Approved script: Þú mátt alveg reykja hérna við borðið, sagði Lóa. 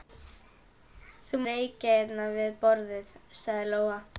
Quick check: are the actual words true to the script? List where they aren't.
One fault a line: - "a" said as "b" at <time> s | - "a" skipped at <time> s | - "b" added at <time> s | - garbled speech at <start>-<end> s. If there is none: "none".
- "mátt alveg" skipped at 1.4 s